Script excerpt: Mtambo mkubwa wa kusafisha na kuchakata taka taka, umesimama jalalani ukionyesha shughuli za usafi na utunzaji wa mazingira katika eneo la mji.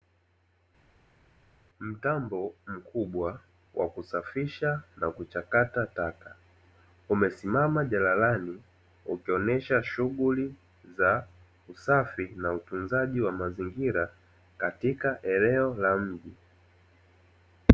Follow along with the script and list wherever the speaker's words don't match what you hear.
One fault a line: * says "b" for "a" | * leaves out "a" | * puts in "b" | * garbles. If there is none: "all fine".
* leaves out "taka"